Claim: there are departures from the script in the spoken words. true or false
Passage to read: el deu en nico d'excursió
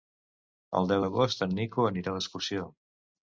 true